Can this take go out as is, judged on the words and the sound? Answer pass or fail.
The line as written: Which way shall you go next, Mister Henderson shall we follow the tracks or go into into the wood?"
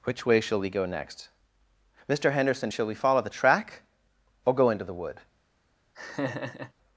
fail